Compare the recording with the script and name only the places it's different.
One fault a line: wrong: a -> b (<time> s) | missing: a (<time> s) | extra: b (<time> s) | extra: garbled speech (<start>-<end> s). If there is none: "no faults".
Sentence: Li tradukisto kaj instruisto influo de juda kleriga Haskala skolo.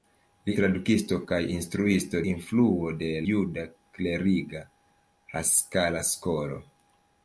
no faults